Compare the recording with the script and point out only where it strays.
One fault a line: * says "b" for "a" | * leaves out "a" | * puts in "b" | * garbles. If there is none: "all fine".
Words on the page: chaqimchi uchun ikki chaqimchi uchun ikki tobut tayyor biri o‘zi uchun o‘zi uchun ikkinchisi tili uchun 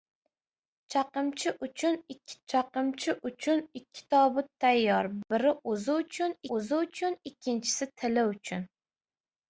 all fine